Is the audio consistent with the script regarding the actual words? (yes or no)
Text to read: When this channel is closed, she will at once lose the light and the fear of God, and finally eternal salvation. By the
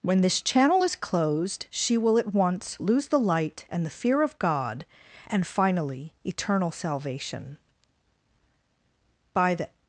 yes